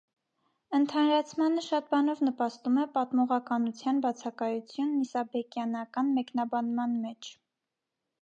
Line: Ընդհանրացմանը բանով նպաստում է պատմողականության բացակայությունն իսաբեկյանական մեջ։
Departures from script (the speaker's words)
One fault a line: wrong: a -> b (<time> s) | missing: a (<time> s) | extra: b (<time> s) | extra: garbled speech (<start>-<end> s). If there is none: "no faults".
extra: շատ (1.6 s)
extra: մեկնաբանման (6.2 s)